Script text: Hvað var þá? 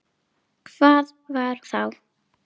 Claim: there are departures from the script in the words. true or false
false